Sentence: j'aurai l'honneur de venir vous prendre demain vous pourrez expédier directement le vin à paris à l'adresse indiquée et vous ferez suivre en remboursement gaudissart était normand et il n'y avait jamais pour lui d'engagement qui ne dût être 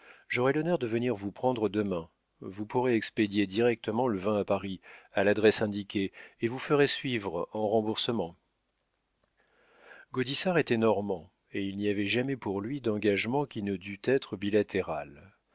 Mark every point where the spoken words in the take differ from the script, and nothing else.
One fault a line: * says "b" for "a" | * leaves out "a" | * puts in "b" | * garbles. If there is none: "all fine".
all fine